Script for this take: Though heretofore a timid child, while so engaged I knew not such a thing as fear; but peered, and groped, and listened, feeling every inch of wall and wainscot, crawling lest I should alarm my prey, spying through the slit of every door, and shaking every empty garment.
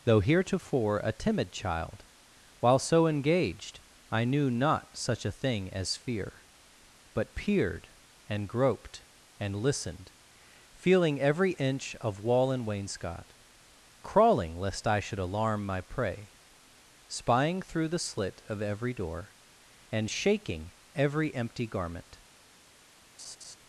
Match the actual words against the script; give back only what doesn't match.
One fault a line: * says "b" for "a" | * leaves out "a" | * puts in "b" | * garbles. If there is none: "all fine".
all fine